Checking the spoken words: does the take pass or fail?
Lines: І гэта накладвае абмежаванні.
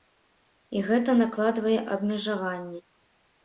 pass